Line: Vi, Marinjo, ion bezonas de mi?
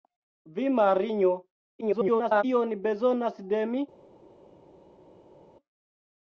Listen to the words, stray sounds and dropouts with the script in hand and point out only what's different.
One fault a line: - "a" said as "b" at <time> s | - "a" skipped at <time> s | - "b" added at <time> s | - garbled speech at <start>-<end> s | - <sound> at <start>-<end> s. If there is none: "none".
- garbled speech at 1.8-2.4 s